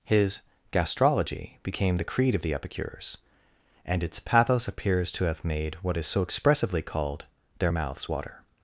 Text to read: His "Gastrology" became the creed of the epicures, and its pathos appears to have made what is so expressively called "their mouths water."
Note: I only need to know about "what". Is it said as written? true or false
true